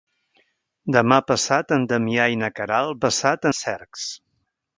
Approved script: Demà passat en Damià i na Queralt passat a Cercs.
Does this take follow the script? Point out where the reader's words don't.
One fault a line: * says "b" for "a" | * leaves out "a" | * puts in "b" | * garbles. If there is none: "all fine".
all fine